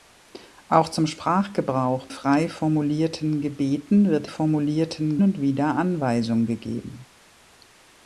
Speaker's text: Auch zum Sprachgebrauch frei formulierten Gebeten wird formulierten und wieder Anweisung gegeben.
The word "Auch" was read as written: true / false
true